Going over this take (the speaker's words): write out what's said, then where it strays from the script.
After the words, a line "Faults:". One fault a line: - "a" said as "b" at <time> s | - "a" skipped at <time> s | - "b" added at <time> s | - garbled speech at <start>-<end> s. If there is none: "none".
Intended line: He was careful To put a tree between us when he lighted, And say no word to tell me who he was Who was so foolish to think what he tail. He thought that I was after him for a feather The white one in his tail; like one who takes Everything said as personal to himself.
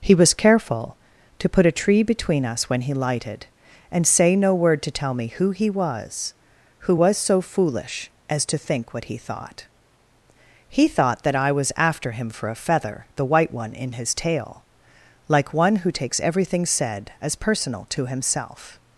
He was careful To put a tree between us when he lighted, And say no word to tell me who he was Who was so foolish as to think what he thought. He thought that I was after him for a feather The white one in his tail; like one who takes Everything said as personal to himself.
Faults:
- "as" added at 8.3 s
- "tail" said as "thought" at 9.2 s